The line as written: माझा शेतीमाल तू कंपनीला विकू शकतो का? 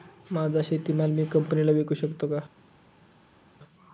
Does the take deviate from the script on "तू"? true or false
true